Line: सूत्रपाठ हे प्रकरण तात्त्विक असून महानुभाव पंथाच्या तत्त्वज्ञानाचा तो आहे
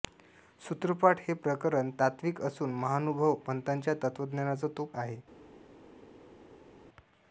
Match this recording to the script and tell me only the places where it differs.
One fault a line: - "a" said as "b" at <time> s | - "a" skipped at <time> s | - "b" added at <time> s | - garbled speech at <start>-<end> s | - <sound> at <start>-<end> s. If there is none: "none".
none